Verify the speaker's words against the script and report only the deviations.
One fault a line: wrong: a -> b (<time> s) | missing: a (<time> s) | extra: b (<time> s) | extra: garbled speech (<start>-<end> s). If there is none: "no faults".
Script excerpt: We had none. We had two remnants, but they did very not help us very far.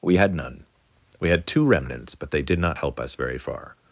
missing: very (2.6 s)